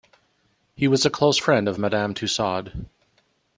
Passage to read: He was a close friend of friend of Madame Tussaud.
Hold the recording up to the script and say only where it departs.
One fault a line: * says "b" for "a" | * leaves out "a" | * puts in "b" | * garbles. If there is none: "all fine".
* leaves out "friend of"